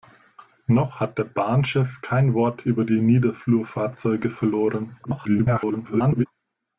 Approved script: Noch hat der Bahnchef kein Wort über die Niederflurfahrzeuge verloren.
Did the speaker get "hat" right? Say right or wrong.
right